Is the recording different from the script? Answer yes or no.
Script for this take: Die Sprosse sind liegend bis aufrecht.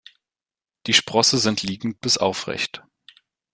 no